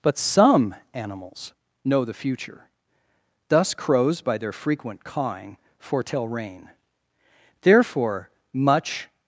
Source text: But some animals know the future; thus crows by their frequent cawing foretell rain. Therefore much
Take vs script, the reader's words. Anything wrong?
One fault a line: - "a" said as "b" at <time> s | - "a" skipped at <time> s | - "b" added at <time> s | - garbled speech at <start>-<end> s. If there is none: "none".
none